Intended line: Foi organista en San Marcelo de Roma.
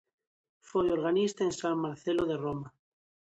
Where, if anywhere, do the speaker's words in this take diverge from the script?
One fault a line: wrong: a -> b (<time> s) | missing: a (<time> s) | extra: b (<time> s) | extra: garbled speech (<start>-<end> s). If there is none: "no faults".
no faults